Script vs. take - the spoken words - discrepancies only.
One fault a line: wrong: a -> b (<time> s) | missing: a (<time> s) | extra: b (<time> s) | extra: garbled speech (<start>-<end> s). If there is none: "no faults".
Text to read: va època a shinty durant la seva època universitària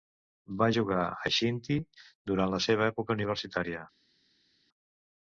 wrong: època -> jugar (0.7 s)